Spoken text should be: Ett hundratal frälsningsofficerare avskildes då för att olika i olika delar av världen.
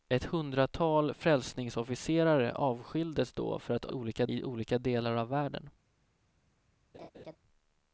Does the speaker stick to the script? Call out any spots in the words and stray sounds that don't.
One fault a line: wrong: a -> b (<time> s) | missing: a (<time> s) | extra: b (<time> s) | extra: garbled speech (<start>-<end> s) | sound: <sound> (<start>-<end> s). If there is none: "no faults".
sound: laugh (6.9-7.4 s)